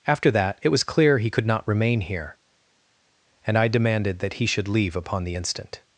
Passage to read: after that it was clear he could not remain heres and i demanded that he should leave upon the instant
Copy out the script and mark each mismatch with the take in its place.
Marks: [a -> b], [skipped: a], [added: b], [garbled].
after that it was clear he could not remain [heres -> here] and i demanded that he should leave upon the instant